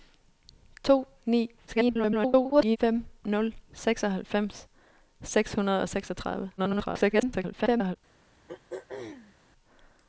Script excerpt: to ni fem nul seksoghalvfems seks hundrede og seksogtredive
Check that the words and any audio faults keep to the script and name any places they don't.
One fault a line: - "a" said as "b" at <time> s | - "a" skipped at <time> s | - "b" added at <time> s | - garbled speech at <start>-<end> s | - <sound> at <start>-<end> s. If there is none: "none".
- garbled speech at 1.7-2.8 s
- garbled speech at 6.6-8.0 s
- throat clearing at 8.5-9.3 s